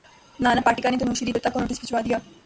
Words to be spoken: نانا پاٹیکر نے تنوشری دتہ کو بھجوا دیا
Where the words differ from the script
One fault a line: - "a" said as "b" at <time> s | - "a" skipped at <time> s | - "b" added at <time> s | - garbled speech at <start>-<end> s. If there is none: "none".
- "نوٹس" added at 1.6 s